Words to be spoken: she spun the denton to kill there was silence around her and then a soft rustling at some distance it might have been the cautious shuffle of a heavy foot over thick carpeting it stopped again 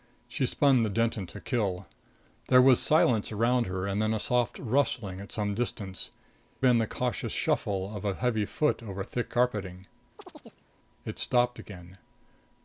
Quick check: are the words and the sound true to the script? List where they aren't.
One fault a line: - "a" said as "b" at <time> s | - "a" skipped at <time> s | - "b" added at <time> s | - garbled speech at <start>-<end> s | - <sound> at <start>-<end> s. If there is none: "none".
- "it might have" skipped at 6.1 s
- chirp at 10.2-10.7 s